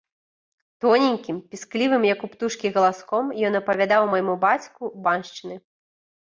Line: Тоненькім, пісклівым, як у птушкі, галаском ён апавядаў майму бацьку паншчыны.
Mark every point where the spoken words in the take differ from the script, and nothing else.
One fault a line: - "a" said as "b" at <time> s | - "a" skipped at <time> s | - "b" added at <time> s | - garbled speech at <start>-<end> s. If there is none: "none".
none